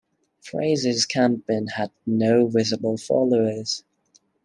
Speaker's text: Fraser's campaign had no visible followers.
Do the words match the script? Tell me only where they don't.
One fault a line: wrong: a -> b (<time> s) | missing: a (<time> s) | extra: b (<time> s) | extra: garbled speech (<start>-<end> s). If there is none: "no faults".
no faults